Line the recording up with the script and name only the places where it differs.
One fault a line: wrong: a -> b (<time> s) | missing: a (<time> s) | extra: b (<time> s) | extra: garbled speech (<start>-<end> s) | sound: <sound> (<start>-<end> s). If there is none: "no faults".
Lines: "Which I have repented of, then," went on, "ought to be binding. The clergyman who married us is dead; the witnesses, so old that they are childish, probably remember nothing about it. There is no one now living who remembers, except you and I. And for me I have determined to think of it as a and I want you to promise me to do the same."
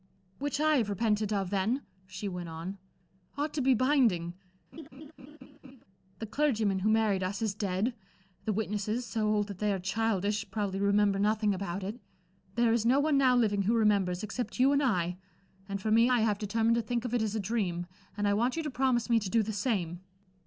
extra: she (2.1 s)
sound: laugh (4.7-5.8 s)
extra: dream (17.4 s)